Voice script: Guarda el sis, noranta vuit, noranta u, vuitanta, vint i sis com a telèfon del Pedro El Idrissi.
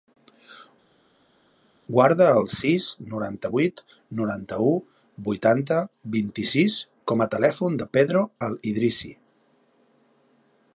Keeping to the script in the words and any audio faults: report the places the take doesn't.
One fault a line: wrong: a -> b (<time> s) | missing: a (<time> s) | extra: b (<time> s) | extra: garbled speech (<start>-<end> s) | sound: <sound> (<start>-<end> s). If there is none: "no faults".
no faults